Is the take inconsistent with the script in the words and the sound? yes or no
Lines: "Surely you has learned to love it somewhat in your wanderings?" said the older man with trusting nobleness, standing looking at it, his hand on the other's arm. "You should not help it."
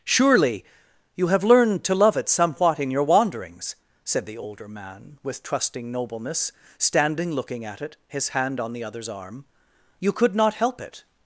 yes